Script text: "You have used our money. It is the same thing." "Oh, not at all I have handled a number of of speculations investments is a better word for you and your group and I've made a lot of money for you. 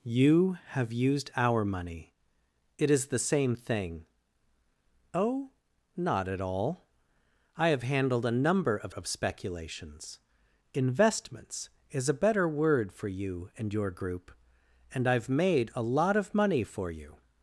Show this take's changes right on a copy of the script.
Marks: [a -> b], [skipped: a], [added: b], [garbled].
"You have used our money. It is the same thing." "Oh, not at all I have handled a number of of speculations investments is a better word for you and your group and I've made a lot of money for you.